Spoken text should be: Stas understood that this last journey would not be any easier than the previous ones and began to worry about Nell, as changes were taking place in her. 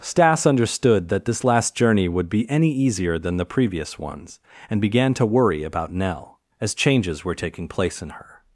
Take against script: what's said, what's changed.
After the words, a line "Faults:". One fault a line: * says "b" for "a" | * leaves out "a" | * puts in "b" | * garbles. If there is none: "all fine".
Stas understood that this last journey would be any easier than the previous ones and began to worry about Nell, as changes were taking place in her.
Faults:
* leaves out "not"